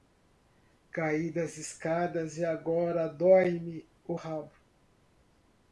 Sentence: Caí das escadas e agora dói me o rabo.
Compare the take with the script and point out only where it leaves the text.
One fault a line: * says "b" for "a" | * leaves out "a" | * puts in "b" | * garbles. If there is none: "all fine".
all fine